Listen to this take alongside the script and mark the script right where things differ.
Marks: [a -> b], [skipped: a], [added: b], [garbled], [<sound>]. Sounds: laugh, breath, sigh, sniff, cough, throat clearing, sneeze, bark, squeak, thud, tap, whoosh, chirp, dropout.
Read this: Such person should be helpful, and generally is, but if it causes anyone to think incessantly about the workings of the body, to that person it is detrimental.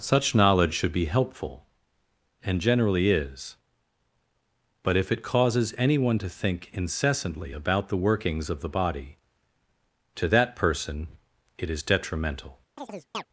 Such [person -> knowledge] should be helpful, and generally is, but if it causes anyone to think incessantly about the workings of the body, to that person it is detrimental. [chirp]